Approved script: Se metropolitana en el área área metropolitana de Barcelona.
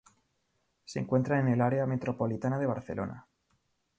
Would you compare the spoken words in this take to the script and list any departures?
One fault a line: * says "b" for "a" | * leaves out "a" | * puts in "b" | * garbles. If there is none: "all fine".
* says "encuentra" for "metropolitana"
* leaves out "área"